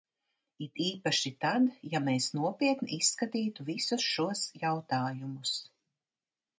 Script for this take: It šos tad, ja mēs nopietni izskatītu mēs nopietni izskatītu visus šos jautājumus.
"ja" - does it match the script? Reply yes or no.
yes